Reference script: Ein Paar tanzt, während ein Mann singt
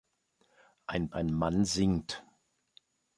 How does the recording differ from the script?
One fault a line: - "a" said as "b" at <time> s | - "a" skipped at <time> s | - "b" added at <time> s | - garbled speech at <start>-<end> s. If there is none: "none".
- "Paar tanzt während" skipped at 1.1 s